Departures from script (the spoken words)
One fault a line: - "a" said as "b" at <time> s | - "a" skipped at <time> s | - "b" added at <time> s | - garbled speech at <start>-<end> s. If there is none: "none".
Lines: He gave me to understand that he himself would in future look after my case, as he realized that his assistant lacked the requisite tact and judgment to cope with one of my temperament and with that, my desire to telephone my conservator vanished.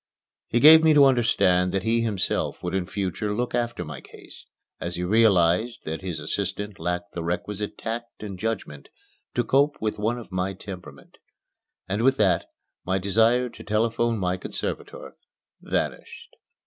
none